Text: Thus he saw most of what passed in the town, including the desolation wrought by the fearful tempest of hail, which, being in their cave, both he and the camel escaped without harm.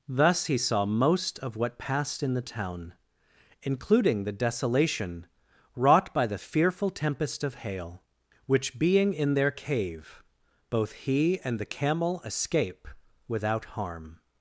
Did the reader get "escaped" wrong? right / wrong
wrong